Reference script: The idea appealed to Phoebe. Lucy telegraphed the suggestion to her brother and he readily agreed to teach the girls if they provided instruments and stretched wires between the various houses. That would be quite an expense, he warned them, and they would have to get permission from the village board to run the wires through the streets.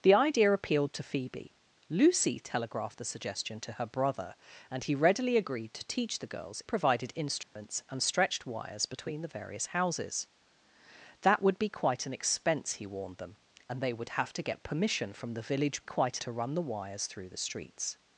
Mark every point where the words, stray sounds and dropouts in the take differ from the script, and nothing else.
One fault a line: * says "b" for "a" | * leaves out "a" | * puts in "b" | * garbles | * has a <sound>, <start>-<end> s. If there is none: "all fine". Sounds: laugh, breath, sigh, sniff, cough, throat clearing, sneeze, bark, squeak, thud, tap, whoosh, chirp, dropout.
* leaves out "if they"
* has a dropout, 7.4-7.6 s
* says "quite" for "board"